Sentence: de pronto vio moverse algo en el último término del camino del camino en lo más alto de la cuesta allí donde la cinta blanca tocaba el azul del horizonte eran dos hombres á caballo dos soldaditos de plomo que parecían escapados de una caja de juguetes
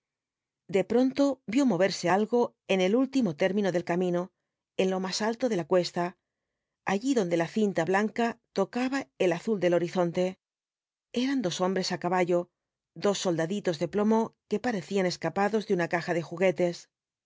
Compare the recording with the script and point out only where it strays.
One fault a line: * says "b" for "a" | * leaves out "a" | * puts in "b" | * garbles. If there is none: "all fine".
* leaves out "del camino"